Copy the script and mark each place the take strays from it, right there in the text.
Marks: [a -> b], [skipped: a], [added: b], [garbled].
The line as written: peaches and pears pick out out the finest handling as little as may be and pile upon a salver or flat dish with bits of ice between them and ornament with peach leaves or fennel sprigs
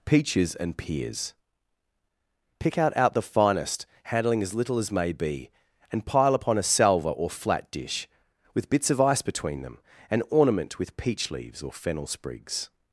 peaches and pears pick out out the finest handling as little as may be and pile upon a salver or flat dish with bits of ice between them and ornament with peach leaves or fennel sprigs